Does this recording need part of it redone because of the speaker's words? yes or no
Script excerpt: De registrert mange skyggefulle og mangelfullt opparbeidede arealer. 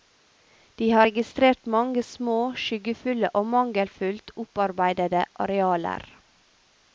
yes